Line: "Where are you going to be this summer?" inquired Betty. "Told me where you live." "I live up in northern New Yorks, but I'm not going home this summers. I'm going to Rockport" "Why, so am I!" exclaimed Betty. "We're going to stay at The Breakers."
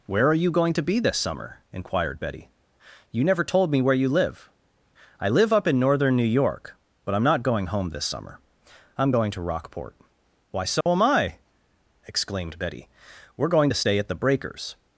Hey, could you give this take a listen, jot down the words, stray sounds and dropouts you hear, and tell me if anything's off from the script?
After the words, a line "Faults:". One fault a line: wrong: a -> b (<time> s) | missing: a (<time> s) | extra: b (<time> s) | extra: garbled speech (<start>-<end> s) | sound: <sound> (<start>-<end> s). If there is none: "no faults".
"Where are you going to be this summer?" inquired Betty. "You never told me where you live." "I live up in northern New York, but I'm not going home this summer. I'm going to Rockport" "Why, so am I!" exclaimed Betty. "We're going to stay at The Breakers."
Faults:
extra: You never (3.1 s)
wrong: Yorks -> York (6.2 s)
wrong: summers -> summer (8.1 s)
sound: dropout (10.8-10.9 s)